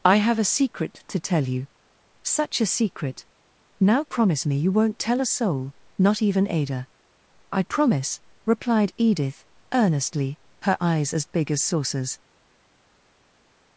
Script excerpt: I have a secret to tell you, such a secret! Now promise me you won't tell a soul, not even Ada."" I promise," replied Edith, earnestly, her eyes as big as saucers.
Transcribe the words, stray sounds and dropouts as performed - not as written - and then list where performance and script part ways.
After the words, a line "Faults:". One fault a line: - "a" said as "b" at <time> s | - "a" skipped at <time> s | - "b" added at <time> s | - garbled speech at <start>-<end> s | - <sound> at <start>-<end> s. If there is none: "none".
I have a secret to tell you, such a secret! Now promise me you won't tell a soul, not even Ada."" I promise," replied Edith, earnestly, her eyes as big as saucers.
Faults:
none